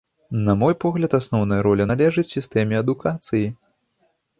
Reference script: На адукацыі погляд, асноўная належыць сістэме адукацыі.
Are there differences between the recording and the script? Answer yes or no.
yes